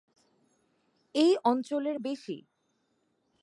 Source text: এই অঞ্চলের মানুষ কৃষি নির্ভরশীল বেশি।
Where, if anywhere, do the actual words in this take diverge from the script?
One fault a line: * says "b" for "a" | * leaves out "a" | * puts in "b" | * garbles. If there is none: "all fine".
* leaves out "মানুষ কৃষি নির্ভরশীল"